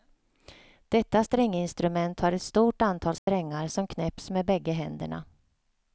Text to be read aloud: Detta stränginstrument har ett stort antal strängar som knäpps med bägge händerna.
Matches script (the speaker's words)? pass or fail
pass